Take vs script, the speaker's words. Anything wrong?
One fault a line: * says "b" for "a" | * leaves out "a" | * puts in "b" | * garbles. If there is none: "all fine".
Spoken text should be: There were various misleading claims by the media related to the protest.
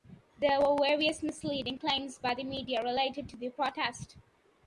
all fine